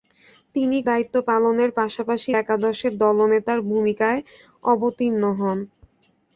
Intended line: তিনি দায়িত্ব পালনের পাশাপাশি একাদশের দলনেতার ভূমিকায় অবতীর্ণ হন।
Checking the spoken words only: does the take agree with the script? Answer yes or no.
yes